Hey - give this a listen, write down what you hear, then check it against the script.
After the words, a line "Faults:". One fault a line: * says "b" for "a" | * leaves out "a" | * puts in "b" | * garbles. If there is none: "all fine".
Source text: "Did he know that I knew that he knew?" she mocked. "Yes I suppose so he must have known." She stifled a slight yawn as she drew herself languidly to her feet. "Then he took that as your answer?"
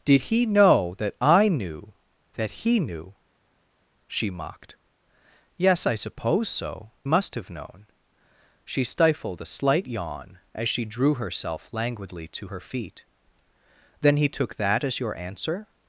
"Did he know that I knew that he knew?" she mocked. "Yes I suppose so must have known." She stifled a slight yawn as she drew herself languidly to her feet. "Then he took that as your answer?"
Faults:
* leaves out "he"